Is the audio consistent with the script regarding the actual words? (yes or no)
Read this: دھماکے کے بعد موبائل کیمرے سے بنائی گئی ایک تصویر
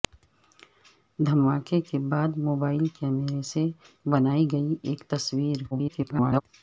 no